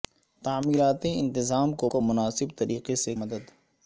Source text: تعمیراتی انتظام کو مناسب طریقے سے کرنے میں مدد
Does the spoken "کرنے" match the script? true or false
false